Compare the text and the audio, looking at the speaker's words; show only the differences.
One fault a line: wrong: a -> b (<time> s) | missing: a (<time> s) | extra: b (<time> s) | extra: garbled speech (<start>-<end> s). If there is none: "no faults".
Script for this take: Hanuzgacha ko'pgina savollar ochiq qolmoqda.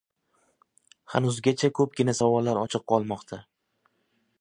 no faults